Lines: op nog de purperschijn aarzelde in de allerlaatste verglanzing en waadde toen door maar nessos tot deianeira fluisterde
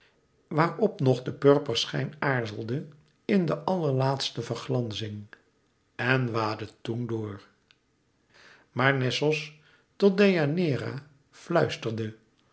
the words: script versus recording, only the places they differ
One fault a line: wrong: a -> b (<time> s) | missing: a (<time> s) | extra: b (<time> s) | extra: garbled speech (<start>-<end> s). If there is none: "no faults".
no faults